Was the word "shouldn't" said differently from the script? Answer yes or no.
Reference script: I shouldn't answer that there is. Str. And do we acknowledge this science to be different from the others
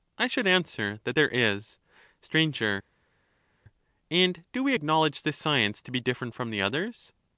yes